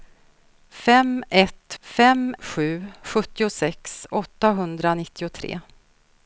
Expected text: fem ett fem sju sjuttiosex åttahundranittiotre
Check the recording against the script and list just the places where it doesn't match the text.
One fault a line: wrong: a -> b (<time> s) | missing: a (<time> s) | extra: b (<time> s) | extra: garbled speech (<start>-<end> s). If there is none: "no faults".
no faults